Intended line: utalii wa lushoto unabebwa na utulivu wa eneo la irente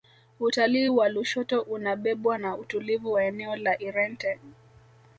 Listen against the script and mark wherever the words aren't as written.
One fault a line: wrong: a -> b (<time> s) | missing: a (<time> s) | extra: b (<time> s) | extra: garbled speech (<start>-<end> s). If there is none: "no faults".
no faults